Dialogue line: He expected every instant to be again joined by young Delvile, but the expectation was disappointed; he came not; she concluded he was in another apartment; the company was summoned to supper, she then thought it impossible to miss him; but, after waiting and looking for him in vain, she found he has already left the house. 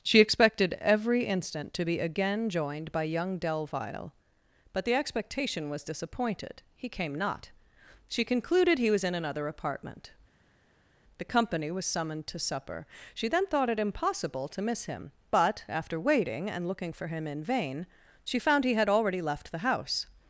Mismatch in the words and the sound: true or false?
true